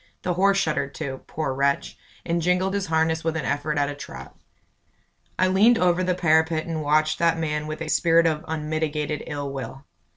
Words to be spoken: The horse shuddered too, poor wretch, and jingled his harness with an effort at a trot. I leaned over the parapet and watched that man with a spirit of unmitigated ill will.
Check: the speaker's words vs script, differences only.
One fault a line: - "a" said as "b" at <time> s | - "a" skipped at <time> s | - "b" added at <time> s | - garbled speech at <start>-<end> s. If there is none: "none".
none